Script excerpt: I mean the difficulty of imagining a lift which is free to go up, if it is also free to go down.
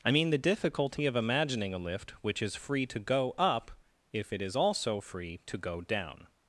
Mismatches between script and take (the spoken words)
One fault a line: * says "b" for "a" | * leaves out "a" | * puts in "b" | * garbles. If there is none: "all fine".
all fine